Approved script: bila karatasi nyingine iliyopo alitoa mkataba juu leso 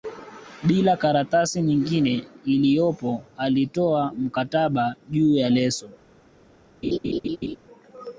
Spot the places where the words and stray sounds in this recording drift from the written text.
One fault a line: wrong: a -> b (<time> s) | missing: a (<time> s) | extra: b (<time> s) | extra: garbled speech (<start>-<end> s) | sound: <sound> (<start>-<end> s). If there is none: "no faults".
extra: ya (5.4 s)
sound: laugh (6.8-7.6 s)